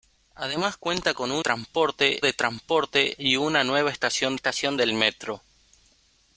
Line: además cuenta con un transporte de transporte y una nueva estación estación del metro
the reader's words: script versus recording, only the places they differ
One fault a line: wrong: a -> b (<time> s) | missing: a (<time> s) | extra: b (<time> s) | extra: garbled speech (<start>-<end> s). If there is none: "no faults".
no faults